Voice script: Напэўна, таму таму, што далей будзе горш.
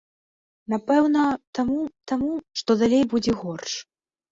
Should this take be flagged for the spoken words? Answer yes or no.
no